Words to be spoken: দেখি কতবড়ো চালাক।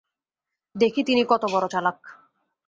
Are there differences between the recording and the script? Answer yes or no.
yes